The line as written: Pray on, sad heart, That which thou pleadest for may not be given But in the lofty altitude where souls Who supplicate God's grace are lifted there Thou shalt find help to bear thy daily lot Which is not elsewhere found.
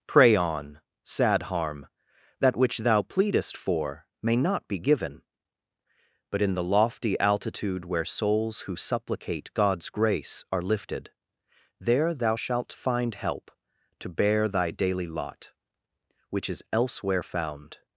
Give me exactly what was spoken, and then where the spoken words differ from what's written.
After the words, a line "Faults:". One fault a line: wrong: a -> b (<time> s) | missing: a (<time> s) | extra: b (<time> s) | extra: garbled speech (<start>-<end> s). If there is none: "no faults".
Pray on, sad harm, That which thou pleadest for may not be given But in the lofty altitude where souls Who supplicate God's grace are lifted there Thou shalt find help to bear thy daily lot Which is elsewhere found.
Faults:
wrong: heart -> harm (1.4 s)
missing: not (16.6 s)